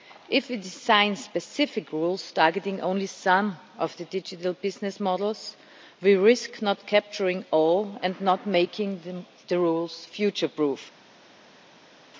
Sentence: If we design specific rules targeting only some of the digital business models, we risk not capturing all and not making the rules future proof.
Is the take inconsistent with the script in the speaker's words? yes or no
no